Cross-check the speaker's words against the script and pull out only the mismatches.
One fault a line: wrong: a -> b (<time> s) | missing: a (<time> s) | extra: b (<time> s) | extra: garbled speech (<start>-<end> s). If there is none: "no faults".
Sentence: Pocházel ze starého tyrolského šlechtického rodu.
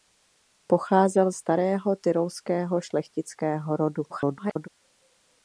missing: ze (1.3 s)
extra: garbled speech (4.1-4.7 s)